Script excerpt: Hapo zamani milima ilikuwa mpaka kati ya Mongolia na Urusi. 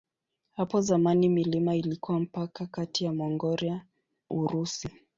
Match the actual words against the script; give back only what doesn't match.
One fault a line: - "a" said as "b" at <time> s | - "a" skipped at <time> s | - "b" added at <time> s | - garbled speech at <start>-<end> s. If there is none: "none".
- "na" skipped at 3.9 s